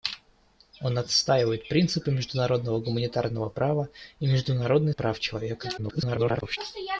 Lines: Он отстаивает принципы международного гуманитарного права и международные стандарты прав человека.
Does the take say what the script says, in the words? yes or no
no